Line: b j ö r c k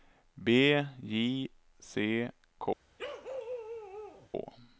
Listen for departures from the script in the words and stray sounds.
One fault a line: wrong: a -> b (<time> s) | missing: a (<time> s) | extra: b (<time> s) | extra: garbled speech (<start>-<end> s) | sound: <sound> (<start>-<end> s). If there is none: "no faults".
missing: ö r (1.5 s)
sound: bark (3.0-4.3 s)